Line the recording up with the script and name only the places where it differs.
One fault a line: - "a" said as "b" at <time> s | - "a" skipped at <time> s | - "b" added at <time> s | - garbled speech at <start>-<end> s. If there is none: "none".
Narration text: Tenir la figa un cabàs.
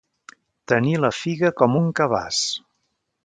- "com" added at 1.6 s